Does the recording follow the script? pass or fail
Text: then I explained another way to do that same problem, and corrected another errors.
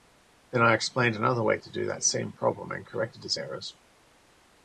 fail